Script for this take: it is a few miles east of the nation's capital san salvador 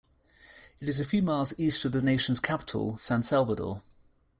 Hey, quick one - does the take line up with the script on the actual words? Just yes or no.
yes